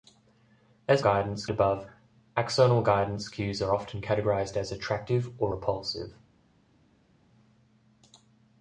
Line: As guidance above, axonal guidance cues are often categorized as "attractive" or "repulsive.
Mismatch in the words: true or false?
false